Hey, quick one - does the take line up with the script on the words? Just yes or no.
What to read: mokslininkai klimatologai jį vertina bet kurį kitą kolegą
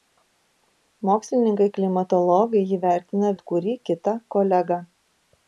yes